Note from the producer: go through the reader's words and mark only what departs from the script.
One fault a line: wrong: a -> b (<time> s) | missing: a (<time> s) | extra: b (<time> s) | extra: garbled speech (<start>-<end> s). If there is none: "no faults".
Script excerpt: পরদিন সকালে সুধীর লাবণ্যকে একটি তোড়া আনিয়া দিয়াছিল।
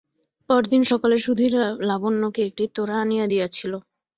no faults